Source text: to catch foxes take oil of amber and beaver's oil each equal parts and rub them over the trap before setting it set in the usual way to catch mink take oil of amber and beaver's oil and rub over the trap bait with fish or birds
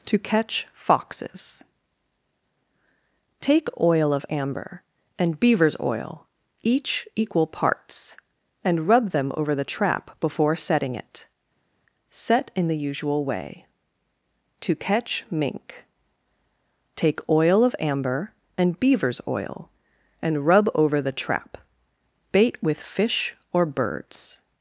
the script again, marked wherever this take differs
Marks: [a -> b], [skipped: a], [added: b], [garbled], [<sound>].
to catch foxes take oil of amber and beaver's oil each equal parts and rub them over the trap before setting it set in the usual way to catch mink take oil of amber and beaver's oil and rub over the trap bait with fish or birds